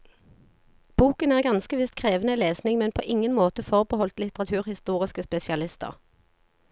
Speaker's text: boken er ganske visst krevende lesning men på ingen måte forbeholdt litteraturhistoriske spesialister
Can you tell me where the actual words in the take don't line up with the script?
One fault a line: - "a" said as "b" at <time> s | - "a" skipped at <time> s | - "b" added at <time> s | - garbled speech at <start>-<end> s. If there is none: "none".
none